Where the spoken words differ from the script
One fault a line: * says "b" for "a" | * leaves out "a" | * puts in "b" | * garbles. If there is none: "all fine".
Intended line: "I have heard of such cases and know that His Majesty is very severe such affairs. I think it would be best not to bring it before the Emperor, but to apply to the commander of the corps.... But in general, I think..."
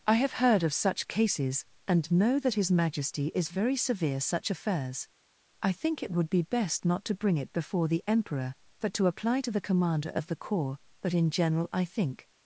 all fine